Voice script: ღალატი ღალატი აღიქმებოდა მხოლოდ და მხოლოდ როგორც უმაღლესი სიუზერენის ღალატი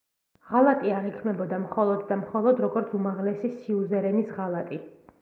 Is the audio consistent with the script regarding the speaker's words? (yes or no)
no